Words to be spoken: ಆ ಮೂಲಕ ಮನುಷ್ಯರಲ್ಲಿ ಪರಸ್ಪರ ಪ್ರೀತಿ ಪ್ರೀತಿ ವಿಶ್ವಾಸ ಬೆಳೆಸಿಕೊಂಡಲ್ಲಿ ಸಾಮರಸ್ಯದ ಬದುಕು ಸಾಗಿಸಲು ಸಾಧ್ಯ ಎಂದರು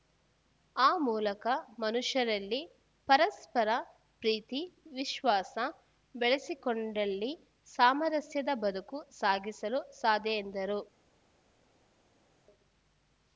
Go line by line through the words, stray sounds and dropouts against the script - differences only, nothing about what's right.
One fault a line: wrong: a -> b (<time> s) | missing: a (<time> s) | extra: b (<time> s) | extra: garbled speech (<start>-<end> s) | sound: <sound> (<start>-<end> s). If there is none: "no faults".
missing: ಪ್ರೀತಿ (4.6 s)